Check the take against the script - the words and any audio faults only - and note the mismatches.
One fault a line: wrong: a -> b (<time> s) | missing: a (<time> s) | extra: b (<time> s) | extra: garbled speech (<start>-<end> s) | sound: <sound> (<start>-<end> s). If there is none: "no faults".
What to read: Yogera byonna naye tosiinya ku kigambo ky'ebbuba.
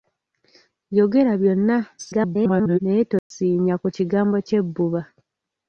extra: garbled speech (2.0-2.8 s)
sound: dropout (3.2-3.3 s)